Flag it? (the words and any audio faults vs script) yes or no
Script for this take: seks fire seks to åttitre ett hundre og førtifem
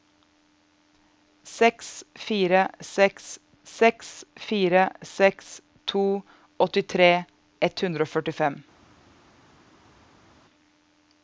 yes